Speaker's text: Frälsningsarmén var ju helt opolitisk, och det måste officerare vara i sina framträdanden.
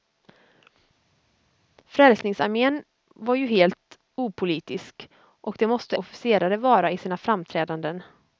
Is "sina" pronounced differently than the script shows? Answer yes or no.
no